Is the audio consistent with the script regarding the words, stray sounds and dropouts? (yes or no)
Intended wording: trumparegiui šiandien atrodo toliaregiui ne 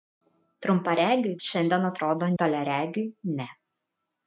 yes